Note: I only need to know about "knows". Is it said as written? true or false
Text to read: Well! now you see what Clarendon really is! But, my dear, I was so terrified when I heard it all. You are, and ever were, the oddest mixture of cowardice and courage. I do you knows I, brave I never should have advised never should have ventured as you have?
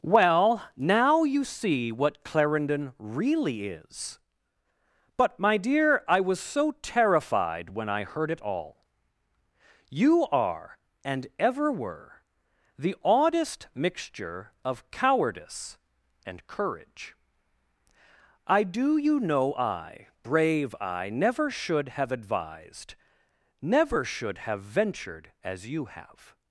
false